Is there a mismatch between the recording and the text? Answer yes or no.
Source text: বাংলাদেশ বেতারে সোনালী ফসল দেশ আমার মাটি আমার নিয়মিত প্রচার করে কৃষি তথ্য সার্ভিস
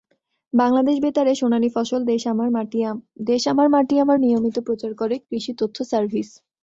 no